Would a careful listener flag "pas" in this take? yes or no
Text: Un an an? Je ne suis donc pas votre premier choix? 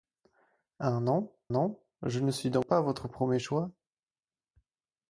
no